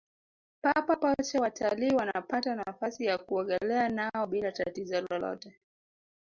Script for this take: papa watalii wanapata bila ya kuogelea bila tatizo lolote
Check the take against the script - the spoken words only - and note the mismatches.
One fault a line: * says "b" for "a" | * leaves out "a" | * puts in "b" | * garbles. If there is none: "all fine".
* puts in "pote"
* says "nafasi" for "bila"
* puts in "nao"